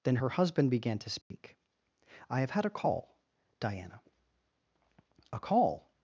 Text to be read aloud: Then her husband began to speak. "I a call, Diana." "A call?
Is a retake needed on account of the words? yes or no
yes